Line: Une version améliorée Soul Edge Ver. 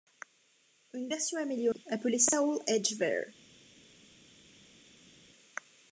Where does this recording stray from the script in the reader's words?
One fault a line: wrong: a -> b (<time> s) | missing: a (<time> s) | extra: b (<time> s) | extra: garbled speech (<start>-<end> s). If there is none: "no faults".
extra: appelée (1.9 s)